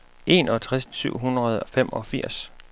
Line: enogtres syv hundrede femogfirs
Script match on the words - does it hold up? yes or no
yes